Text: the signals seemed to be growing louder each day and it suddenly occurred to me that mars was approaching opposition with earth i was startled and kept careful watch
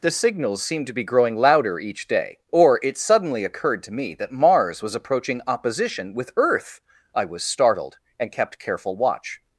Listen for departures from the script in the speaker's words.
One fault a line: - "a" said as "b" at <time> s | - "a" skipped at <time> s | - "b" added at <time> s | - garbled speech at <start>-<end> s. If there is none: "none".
- "and" said as "or" at 2.5 s